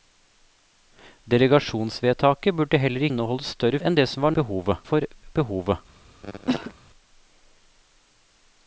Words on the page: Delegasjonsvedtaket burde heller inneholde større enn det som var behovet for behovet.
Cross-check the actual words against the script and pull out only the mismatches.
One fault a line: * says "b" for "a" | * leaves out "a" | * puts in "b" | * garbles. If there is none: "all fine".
all fine